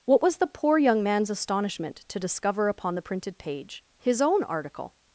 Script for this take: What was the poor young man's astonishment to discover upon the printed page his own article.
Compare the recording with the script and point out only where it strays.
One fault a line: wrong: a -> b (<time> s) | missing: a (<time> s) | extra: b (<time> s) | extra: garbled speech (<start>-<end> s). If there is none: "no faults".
no faults